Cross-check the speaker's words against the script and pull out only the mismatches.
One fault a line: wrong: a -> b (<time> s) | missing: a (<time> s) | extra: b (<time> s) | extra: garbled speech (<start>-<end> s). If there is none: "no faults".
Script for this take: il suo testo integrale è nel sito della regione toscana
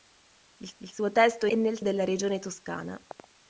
extra: il (0.8 s)
missing: integrale (1.5 s)
missing: sito (1.8 s)